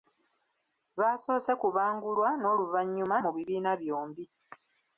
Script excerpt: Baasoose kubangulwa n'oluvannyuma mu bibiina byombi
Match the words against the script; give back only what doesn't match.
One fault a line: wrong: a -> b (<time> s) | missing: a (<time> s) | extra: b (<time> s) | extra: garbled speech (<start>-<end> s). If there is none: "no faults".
no faults